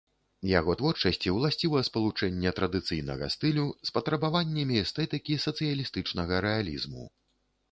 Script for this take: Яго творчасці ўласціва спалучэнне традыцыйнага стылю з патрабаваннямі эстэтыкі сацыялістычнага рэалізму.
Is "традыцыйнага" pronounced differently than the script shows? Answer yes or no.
no